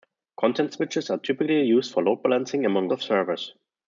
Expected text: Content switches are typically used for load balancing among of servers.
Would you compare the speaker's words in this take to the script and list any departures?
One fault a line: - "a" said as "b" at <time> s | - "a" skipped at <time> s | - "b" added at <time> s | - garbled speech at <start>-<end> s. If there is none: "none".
none